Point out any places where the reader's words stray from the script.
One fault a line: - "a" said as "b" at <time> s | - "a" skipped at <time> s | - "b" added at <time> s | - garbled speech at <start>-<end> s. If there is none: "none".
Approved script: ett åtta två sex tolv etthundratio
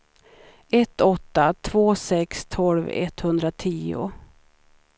none